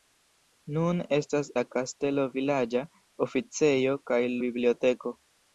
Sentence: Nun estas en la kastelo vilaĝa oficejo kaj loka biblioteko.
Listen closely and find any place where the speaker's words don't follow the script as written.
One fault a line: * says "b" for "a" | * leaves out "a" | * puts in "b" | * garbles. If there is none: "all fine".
* leaves out "en"
* leaves out "loka"